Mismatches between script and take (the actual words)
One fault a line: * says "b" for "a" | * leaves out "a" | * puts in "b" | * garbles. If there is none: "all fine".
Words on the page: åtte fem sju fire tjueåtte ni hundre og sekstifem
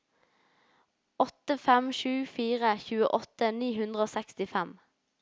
all fine